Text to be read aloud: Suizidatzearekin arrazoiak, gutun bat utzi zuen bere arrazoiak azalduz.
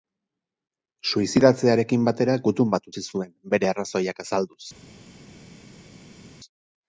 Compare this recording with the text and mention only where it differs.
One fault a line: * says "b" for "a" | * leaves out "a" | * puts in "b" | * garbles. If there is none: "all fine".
* says "batera" for "arrazoiak"